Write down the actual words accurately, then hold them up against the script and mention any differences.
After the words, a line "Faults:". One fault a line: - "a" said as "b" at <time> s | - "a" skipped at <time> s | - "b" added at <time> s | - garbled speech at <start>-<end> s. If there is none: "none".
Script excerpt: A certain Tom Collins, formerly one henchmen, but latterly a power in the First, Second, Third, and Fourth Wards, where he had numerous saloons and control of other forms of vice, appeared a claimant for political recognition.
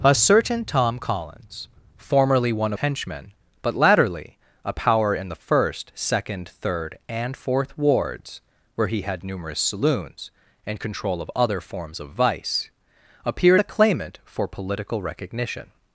A certain Tom Collins, formerly one henchmen, but latterly a power in the First, Second, Third, and Fourth Wards, where he had numerous saloons and control of other forms of vice, appeared a claimant for political recognition.
Faults:
none